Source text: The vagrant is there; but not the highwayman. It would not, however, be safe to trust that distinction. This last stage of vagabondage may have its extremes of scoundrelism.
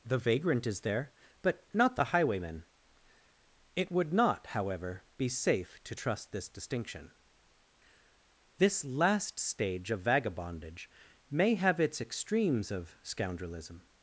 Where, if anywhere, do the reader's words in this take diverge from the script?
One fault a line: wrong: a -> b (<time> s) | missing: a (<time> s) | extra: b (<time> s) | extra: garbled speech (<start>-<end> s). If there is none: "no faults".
wrong: that -> this (6.3 s)